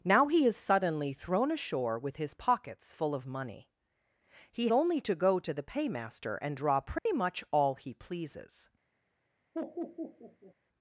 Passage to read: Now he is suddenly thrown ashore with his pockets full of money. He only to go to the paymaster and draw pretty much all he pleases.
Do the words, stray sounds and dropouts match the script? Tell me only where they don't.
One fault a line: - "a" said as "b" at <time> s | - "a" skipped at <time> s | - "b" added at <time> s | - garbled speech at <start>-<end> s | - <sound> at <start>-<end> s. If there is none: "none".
- dropout at 7.0-7.1 s
- laugh at 9.5-10.5 s